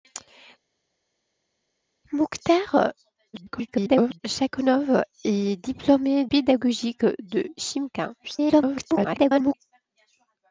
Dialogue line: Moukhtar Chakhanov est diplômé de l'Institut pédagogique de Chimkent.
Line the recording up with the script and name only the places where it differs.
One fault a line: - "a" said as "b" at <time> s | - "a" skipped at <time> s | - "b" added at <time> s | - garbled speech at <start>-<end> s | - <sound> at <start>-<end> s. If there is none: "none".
- garbled speech at 3.3-4.2 s
- "de l'Institut" skipped at 6.3 s
- garbled speech at 8.2-9.5 s